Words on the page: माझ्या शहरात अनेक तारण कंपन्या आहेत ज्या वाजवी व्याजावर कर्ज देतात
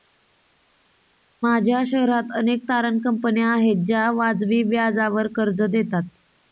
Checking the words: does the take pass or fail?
pass